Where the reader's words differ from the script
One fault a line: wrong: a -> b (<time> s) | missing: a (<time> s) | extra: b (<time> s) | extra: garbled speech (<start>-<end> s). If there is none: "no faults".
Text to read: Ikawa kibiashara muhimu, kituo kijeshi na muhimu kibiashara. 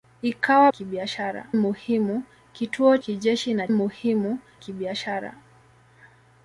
no faults